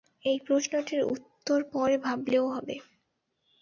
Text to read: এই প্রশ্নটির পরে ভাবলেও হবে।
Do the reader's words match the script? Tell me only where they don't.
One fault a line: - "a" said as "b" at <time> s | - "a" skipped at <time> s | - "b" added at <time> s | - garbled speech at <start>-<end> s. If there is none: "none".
- "উত্তর" added at 1.1 s